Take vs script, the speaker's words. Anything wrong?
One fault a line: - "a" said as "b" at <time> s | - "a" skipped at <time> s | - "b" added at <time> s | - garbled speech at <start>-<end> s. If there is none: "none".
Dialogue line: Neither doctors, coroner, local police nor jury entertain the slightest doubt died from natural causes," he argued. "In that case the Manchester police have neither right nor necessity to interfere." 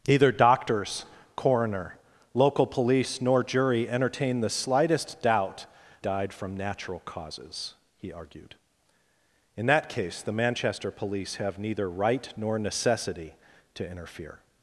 none